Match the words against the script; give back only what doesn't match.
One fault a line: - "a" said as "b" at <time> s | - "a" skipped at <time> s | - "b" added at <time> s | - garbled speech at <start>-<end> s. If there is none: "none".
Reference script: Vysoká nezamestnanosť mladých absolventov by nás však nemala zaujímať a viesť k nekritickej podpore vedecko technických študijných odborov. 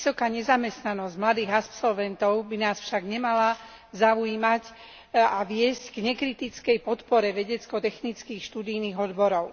none